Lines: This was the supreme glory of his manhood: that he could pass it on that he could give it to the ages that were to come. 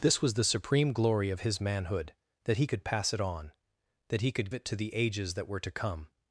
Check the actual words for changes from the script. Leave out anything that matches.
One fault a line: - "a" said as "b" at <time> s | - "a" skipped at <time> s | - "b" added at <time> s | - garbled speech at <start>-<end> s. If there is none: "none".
- "give" skipped at 4.5 s